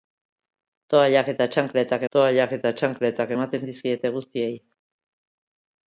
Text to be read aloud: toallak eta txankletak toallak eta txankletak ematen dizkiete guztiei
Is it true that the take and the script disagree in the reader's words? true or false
false